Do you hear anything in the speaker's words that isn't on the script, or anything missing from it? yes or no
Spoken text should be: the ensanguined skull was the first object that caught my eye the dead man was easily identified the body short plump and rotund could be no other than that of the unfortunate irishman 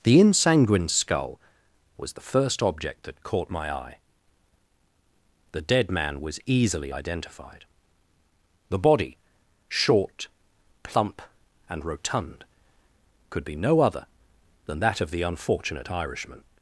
no